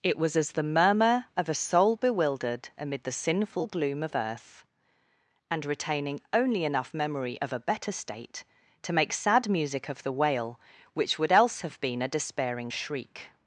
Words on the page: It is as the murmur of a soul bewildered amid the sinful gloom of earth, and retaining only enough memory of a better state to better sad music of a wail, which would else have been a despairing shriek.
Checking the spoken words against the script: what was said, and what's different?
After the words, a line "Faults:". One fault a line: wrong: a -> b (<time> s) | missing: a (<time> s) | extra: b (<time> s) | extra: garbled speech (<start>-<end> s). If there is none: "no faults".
It was as the murmur of a soul bewildered amid the sinful gloom of earth, and retaining only enough memory of a better state to make sad music of the wail, which would else have been a despairing shriek.
Faults:
wrong: is -> was (0.2 s)
wrong: better -> make (8.9 s)
wrong: a -> the (10.0 s)